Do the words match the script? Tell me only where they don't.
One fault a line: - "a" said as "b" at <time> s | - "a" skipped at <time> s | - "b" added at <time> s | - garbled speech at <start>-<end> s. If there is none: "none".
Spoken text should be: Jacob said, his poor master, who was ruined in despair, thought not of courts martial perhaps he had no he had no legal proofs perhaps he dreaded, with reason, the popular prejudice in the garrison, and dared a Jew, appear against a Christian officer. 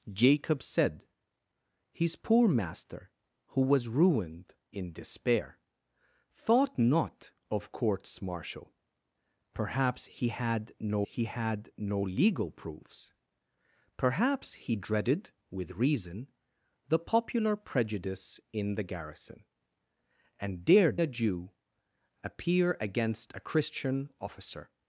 none